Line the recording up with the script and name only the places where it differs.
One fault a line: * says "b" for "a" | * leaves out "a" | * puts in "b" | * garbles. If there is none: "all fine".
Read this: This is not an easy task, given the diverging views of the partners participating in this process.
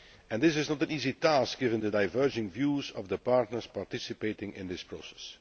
all fine